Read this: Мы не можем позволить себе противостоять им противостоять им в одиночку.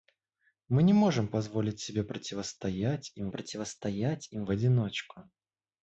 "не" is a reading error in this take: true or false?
false